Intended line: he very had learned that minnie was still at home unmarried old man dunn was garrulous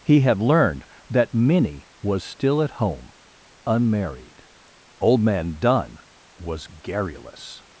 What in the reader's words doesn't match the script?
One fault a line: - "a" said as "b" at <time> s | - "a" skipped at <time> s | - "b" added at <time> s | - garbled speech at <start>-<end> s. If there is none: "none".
- "very" skipped at 0.2 s